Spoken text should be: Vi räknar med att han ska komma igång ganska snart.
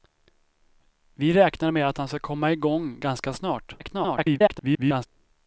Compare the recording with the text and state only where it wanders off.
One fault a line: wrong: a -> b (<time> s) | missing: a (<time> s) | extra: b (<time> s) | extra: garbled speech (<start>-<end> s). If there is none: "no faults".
extra: garbled speech (3.8-5.1 s)